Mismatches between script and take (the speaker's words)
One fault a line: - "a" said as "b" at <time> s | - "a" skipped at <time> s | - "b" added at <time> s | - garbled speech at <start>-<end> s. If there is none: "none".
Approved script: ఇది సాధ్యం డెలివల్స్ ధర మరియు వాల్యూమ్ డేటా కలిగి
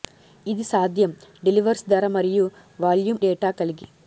none